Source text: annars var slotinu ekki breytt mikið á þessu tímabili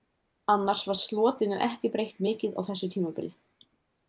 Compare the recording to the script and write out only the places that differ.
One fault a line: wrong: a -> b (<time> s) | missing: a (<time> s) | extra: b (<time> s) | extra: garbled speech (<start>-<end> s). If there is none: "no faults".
no faults